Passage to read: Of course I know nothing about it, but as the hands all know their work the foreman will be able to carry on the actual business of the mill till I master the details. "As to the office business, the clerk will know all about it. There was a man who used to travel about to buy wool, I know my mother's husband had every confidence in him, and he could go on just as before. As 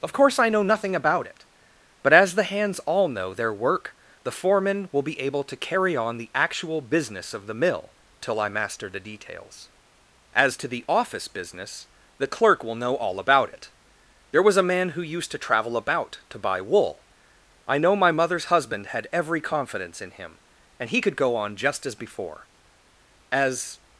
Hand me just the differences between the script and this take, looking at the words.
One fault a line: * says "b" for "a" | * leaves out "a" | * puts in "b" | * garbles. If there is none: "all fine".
all fine